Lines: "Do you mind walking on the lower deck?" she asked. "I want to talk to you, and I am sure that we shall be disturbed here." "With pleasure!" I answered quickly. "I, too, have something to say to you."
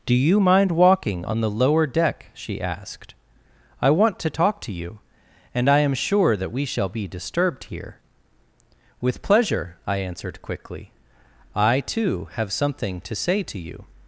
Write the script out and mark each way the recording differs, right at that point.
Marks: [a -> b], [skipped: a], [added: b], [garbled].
"Do you mind walking on the lower deck?" she asked. "I want to talk to you, and I am sure that we shall be disturbed here." "With pleasure!" I answered quickly. "I, too, have something to say to you."